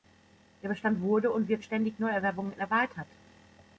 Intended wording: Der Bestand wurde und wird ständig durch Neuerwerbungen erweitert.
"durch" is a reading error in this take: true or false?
true